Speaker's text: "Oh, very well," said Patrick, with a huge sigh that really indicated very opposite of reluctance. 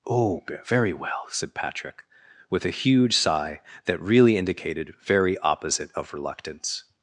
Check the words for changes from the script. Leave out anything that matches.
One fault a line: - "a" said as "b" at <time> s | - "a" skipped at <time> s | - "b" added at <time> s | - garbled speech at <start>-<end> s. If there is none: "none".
none